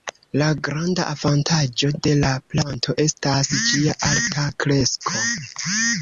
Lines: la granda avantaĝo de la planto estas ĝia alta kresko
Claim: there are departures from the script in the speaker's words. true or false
false